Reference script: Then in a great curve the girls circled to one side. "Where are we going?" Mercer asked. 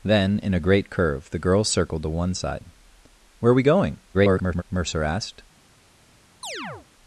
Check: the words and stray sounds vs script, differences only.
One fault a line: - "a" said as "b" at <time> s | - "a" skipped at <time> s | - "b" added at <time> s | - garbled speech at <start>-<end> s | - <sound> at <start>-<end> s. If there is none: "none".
- garbled speech at 4.1-4.6 s
- chirp at 6.4-6.9 s